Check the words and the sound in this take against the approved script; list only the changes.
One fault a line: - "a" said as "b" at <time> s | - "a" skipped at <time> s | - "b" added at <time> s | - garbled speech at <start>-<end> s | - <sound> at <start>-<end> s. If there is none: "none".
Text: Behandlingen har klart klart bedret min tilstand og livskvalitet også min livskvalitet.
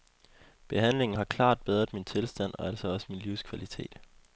- "klart" skipped at 1.6 s
- "livskvalitet" said as "altså" at 2.7 s